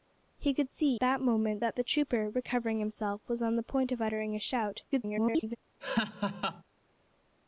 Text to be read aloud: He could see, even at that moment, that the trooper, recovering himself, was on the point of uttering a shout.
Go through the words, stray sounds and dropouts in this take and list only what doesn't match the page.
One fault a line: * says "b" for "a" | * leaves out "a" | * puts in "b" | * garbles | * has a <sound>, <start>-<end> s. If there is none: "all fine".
* leaves out "even at"
* garbles
* has a laugh, 5.8-6.6 s